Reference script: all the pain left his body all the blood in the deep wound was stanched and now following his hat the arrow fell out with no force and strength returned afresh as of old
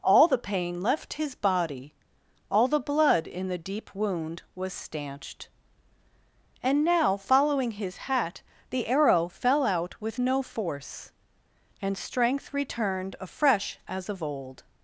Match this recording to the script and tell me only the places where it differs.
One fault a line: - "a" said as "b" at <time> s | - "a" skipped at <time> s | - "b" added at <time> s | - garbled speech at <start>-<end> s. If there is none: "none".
none